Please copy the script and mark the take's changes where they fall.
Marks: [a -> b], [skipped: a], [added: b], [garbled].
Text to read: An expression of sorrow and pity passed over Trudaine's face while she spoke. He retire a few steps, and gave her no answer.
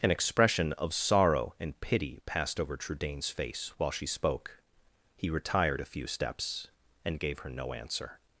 An expression of sorrow and pity passed over Trudaine's face while she spoke. He [retire -> retired] a few steps, and gave her no answer.